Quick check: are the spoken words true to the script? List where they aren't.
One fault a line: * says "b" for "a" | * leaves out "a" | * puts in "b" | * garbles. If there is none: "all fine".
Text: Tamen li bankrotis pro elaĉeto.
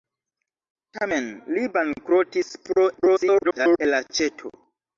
* garbles